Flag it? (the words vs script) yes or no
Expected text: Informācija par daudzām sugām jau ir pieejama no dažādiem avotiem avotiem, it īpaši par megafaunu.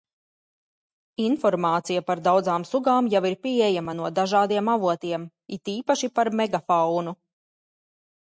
yes